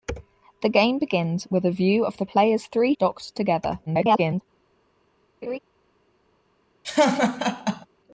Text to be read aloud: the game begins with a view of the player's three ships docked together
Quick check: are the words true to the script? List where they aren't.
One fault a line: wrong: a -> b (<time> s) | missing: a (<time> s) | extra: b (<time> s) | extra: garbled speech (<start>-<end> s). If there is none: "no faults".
missing: ships (2.9 s)
extra: garbled speech (3.9-4.4 s)